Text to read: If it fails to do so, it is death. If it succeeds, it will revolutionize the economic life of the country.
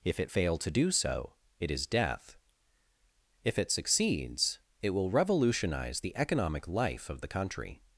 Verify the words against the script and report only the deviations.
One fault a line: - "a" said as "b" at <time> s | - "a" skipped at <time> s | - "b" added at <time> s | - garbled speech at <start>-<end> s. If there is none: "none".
- "fails" said as "fail" at 0.3 s